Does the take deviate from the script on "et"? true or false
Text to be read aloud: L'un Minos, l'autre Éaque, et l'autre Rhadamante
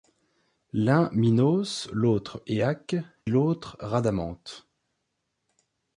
true